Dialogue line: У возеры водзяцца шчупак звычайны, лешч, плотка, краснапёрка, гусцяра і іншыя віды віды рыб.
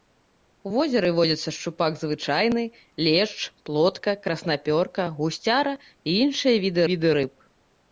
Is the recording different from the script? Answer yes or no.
no